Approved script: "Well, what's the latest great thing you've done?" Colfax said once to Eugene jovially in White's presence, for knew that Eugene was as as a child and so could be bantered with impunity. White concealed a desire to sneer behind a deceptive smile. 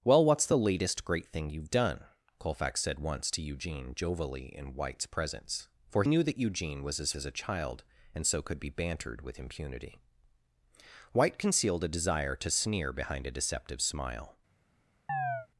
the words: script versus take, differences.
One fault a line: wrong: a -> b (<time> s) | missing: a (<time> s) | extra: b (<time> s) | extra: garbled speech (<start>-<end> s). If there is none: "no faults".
no faults